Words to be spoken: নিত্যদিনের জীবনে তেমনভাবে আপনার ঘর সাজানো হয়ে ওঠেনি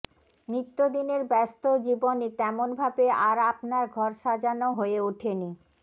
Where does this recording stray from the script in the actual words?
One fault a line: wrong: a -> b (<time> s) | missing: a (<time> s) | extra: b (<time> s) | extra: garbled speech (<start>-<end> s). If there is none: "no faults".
extra: ব্যস্ত (1.2 s)
extra: আর (3.2 s)